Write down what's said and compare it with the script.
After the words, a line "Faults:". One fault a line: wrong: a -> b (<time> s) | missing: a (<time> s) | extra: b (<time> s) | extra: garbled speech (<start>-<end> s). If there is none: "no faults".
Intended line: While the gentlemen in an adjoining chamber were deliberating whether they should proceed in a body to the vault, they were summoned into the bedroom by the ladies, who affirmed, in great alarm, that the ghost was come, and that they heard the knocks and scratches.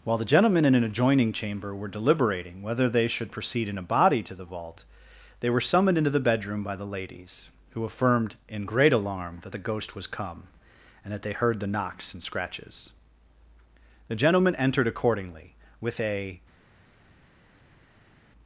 While the gentlemen in an adjoining chamber were deliberating whether they should proceed in a body to the vault, they were summoned into the bedroom by the ladies, who affirmed, in great alarm, that the ghost was come, and that they heard the knocks and scratches. The gentlemen entered accordingly, with a
Faults:
extra: The gentlemen entered accordingly with a (14.1 s)